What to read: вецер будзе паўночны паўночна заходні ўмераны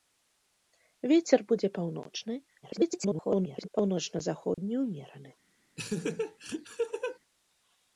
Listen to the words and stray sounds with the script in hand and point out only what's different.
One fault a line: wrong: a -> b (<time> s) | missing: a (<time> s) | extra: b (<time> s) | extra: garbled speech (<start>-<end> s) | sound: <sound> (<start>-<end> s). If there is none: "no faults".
extra: garbled speech (2.6-3.7 s)
sound: dropout (4.5-4.6 s)
sound: laugh (5.8-7.2 s)